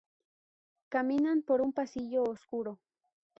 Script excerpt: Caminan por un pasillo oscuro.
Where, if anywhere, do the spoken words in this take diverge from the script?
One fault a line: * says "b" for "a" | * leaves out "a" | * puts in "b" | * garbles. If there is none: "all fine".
all fine